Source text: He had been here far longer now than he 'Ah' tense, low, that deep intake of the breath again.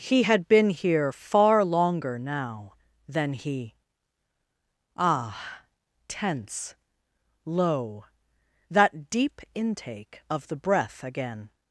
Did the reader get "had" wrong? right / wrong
right